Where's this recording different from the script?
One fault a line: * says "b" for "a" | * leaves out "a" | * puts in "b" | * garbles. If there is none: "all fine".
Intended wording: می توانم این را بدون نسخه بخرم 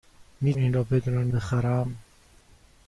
* leaves out "توانم"
* leaves out "نسخه"